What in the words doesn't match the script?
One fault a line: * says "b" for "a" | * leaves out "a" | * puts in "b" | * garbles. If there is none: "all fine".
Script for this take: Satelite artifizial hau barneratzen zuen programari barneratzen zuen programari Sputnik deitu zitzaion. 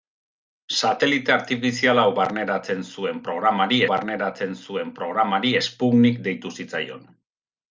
all fine